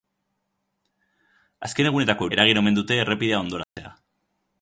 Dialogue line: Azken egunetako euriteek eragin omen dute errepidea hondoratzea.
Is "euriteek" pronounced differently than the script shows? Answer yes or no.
yes